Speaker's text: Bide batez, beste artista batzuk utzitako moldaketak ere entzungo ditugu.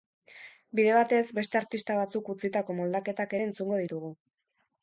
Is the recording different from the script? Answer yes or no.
no